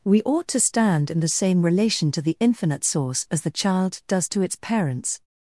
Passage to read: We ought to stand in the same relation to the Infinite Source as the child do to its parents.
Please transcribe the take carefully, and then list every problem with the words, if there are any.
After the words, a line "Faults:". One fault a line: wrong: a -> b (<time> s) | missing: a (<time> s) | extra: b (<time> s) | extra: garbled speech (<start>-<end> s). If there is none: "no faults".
We ought to stand in the same relation to the Infinite Source as the child does to its parents.
Faults:
wrong: do -> does (4.1 s)